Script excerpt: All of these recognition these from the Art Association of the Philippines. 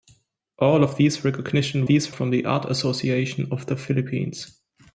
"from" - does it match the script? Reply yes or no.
yes